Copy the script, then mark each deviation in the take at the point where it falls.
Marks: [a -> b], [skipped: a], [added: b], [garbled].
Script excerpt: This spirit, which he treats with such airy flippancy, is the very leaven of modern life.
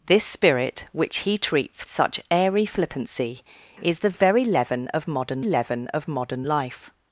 This spirit, which he treats [skipped: with] such airy flippancy, is the very leaven of modern [added: leaven of modern] life.